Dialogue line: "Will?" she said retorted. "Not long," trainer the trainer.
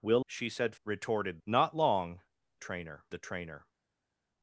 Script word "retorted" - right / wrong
right